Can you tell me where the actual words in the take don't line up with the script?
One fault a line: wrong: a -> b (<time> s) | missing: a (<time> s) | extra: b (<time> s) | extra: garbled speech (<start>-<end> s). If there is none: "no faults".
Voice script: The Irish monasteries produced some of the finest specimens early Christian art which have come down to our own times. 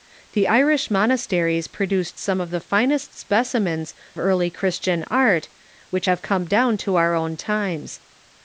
no faults